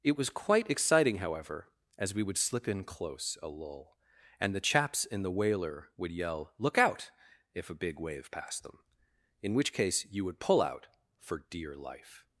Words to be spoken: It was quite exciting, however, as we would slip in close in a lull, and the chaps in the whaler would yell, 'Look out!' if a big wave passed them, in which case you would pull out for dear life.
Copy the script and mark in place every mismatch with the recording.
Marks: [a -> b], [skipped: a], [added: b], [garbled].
It was quite exciting, however, as we would slip in close [skipped: in] a lull, and the chaps in the whaler would yell, 'Look out!' if a big wave passed them, in which case you would pull out for dear life.